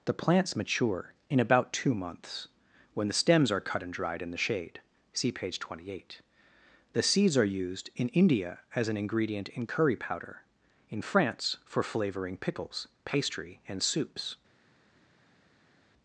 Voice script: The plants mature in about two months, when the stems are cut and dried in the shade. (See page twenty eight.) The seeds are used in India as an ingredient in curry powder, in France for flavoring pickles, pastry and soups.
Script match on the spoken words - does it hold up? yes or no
yes